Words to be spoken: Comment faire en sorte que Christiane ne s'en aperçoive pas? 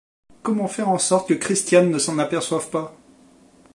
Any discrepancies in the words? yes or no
no